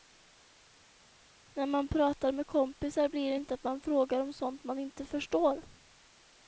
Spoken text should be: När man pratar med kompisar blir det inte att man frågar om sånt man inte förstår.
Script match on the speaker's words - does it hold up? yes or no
yes